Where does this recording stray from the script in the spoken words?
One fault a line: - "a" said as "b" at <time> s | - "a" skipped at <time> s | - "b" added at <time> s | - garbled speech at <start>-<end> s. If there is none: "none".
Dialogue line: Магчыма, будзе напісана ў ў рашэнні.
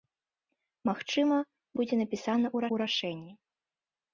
none